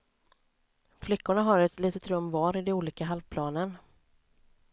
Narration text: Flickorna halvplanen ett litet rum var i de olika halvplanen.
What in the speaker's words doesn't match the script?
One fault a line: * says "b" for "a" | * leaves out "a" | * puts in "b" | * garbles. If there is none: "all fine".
* says "har" for "halvplanen"